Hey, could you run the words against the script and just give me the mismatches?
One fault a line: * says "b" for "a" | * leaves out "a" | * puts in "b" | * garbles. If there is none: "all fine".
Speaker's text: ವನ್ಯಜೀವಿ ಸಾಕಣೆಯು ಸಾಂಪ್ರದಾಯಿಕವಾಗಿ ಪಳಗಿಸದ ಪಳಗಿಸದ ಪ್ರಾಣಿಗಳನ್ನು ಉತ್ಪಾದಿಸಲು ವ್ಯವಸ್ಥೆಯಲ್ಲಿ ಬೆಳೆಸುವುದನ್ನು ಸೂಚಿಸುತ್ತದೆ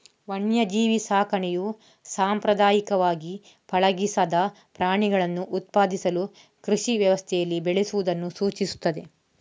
* leaves out "ಪಳಗಿಸದ"
* puts in "ಕೃಷಿ"